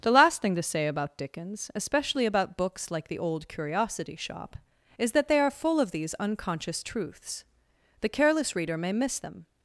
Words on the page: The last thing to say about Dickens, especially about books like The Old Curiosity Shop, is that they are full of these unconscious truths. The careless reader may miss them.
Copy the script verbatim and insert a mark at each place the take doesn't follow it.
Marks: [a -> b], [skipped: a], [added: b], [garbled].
The last thing to say about Dickens, especially about books like The Old Curiosity Shop, is that they are full of these unconscious truths. The careless reader may miss them.